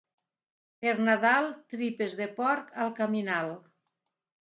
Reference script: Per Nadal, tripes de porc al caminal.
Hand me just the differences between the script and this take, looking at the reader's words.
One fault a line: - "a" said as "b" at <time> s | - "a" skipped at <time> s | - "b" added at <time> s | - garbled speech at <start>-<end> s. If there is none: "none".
none